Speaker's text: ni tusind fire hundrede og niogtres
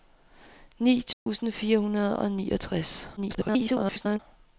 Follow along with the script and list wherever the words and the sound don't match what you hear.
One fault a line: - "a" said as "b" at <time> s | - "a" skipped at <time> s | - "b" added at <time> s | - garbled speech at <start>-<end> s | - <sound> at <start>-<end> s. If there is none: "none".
- dropout at 1.1-1.3 s
- garbled speech at 3.2-4.2 s